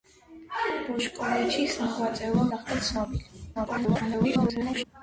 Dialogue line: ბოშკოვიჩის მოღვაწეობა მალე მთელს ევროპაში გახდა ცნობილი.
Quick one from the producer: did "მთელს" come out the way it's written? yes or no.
no